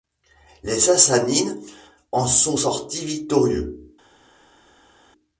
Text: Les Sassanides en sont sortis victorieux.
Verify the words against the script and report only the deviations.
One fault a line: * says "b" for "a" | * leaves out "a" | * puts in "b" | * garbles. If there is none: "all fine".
all fine